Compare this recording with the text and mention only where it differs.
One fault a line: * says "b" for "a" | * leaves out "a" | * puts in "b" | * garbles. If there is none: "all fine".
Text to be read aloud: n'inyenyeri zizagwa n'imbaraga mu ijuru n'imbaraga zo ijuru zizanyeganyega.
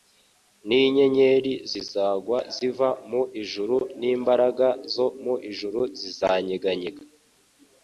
* says "ziva" for "n'imbaraga"
* puts in "mu"